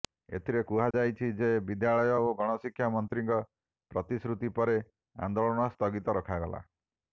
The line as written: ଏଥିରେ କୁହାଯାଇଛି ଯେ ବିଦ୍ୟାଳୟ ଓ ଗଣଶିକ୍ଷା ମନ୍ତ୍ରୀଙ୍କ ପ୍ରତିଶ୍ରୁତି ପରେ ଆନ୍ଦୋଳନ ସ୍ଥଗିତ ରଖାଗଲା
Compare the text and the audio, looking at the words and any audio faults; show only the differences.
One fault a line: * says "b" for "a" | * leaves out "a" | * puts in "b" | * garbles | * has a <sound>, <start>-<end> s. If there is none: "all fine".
* has a dropout, 0.9-0.9 s